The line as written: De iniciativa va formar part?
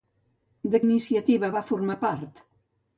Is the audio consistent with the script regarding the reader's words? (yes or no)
yes